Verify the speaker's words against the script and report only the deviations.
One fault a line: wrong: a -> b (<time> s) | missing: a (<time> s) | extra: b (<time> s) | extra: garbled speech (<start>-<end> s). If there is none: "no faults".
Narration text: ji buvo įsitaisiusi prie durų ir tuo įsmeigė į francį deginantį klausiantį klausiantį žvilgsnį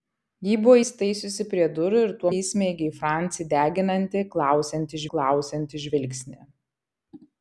no faults